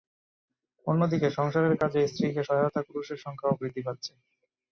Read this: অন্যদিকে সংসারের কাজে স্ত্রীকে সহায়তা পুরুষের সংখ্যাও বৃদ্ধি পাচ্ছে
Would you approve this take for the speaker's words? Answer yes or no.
yes